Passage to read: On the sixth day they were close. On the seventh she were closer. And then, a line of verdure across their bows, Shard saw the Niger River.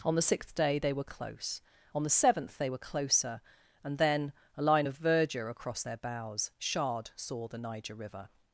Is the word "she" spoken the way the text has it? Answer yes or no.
no